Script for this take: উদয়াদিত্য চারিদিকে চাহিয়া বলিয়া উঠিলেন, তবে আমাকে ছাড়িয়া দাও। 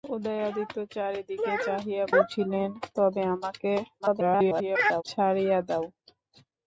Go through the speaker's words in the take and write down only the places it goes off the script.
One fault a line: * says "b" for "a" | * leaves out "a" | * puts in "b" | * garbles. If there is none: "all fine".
* leaves out "বলিয়া"
* garbles